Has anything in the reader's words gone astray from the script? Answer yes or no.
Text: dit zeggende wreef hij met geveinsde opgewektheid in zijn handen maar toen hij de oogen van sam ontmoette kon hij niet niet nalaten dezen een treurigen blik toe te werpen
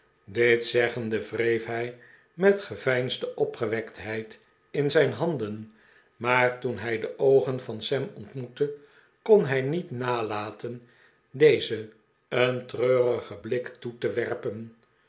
yes